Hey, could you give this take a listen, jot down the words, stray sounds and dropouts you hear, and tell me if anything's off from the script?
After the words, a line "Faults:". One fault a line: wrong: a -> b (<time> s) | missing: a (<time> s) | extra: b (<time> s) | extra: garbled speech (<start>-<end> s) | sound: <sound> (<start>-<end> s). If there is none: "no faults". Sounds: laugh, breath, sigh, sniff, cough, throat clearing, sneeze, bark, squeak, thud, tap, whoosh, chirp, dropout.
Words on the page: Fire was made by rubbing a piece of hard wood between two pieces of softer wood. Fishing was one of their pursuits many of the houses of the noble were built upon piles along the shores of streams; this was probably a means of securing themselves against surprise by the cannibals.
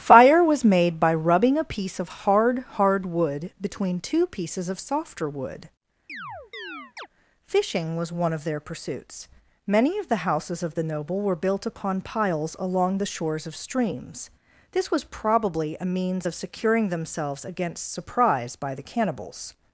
Fire was made by rubbing a piece of hard hard wood between two pieces of softer wood. Fishing was one of their pursuits many of the houses of the noble were built upon piles along the shores of streams; this was probably a means of securing themselves against surprise by the cannibals.
Faults:
extra: hard (2.7 s)
sound: chirp (6.1-7.1 s)